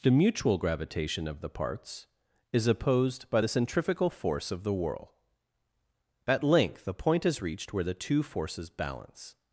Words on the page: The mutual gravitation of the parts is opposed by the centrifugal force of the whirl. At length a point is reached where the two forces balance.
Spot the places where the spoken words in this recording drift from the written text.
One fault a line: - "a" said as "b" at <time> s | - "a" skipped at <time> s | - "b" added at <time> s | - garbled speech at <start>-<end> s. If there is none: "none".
- "a" said as "the" at 6.8 s